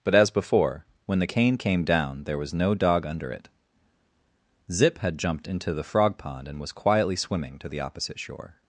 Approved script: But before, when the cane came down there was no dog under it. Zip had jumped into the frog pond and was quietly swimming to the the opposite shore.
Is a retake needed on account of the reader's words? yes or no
yes